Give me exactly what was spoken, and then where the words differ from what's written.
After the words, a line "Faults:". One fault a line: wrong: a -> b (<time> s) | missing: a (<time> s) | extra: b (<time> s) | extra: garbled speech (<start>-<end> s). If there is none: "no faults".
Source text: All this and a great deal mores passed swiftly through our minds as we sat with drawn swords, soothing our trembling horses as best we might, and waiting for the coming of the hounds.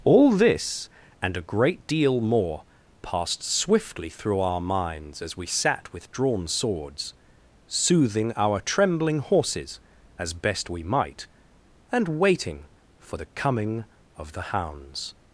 All this and a great deal more passed swiftly through our minds as we sat with drawn swords, soothing our trembling horses as best we might, and waiting for the coming of the hounds.
Faults:
wrong: mores -> more (2.2 s)